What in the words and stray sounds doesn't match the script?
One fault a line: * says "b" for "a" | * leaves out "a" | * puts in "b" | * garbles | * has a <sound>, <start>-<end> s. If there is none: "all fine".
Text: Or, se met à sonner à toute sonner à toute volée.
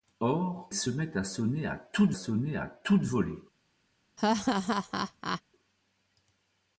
* has a laugh, 4.2-5.4 s